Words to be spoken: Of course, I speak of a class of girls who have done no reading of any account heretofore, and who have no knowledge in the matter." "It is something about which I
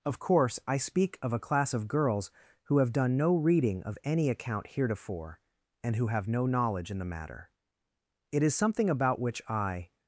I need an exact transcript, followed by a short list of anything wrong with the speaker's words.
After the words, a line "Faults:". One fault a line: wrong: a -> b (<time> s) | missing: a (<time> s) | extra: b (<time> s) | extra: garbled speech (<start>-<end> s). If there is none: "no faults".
Of course, I speak of a class of girls who have done no reading of any account heretofore, and who have no knowledge in the matter." "It is something about which I
Faults:
no faults